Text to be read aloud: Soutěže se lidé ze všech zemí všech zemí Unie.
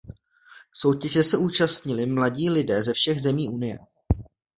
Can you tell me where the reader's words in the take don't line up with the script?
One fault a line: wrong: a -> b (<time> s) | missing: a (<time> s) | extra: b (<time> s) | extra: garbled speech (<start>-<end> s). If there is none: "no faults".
extra: účastnili mladí (1.4 s)
missing: všech zemí (3.5 s)